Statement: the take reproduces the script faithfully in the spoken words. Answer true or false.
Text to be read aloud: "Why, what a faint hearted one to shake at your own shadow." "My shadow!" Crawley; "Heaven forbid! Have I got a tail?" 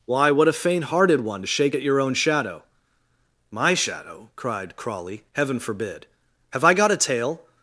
false